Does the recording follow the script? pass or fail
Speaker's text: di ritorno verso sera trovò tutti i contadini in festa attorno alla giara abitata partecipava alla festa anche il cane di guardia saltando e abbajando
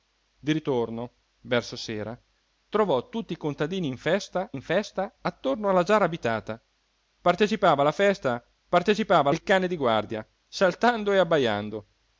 fail